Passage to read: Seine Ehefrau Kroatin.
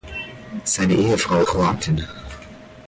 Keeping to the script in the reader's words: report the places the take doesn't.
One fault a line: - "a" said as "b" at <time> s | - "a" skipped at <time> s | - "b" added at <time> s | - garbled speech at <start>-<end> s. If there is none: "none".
none